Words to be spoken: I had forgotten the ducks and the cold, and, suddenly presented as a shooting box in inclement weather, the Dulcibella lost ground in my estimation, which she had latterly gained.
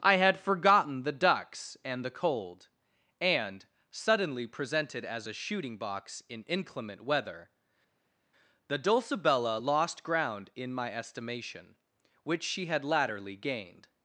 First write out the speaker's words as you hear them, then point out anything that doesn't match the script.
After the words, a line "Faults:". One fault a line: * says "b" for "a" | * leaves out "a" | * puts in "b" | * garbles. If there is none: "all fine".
I had forgotten the ducks and the cold, and, suddenly presented as a shooting box in inclement weather, the Dulcibella lost ground in my estimation, which she had latterly gained.
Faults:
all fine